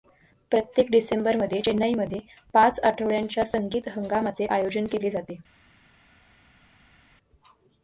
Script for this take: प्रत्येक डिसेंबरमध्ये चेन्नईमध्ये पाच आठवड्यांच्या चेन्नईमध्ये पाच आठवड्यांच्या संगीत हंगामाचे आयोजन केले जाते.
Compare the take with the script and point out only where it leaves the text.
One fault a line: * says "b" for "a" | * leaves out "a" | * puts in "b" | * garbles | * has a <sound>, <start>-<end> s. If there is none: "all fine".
* leaves out "चेन्नईमध्ये पाच आठवड्यांच्या"